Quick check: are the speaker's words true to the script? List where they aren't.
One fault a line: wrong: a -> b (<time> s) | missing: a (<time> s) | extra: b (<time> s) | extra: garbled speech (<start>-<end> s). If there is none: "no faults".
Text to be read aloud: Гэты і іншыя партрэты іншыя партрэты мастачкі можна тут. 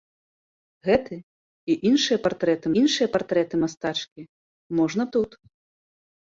no faults